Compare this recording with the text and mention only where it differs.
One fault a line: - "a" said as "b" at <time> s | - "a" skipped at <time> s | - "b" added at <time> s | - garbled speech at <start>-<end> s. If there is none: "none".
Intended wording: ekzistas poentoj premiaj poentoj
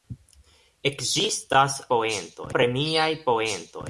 none